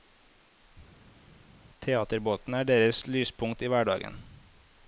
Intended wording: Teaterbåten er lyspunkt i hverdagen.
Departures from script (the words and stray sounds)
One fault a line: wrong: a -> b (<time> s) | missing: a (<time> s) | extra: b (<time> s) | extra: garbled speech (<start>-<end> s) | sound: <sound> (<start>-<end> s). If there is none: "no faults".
extra: deres (2.7 s)